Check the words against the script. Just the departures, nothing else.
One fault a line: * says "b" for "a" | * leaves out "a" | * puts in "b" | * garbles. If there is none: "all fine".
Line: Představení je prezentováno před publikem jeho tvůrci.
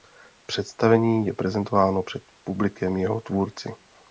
all fine